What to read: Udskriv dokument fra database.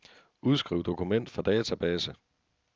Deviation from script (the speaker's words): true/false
false